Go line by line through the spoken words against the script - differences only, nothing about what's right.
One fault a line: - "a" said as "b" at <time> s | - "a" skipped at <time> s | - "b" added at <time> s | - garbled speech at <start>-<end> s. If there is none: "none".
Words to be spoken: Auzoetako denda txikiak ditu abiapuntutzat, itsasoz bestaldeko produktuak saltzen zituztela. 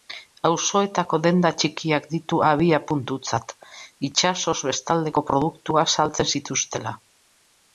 none